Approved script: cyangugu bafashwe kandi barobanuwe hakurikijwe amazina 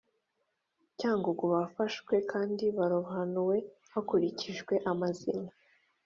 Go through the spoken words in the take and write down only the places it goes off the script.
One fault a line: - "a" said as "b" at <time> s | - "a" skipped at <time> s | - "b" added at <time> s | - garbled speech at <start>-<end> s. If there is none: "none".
none